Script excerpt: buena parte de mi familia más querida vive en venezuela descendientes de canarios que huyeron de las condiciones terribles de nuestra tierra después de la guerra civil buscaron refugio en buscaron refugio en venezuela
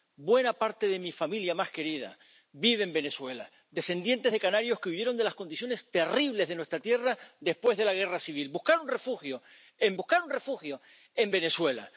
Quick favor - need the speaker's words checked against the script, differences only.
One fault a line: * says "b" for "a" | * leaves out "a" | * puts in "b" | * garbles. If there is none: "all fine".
all fine